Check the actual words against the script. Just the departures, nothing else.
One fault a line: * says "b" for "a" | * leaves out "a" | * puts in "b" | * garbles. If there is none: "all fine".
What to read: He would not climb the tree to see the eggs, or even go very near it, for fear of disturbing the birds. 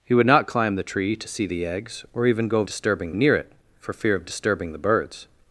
* says "disturbing" for "very"